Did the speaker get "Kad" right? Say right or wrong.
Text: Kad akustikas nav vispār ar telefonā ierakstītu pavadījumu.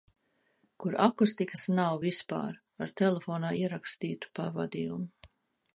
wrong